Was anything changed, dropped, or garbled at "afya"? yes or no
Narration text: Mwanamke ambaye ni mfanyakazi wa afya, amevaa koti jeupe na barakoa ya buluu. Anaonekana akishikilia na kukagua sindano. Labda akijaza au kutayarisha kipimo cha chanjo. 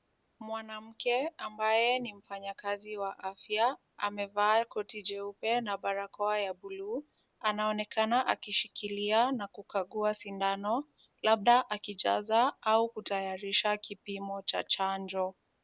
no